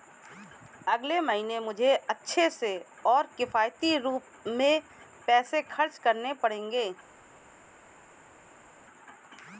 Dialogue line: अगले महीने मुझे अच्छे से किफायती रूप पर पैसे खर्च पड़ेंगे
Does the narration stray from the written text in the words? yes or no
yes